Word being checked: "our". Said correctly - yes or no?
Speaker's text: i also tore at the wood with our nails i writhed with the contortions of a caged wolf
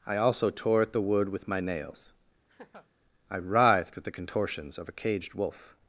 no